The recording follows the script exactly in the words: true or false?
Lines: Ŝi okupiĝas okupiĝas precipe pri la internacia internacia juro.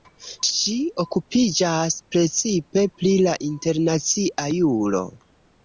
false